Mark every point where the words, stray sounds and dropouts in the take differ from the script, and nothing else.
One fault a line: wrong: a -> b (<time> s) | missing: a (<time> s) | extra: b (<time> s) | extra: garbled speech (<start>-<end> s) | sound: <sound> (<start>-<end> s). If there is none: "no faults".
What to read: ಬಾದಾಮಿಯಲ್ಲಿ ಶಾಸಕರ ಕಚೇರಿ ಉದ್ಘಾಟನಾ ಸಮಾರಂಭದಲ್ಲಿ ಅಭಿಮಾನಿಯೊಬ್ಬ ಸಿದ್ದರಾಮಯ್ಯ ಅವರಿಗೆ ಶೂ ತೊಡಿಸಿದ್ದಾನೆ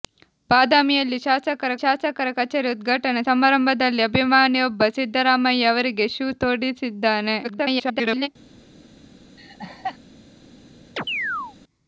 extra: ಶಾಸಕರ (1.8 s)
extra: garbled speech (7.4-8.3 s)
sound: laugh (9.4-10.0 s)
sound: chirp (11.0-11.6 s)